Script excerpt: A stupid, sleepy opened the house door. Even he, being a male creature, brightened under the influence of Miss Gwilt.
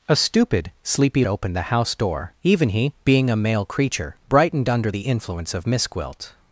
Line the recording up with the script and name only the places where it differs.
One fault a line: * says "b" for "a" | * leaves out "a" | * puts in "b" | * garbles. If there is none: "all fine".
all fine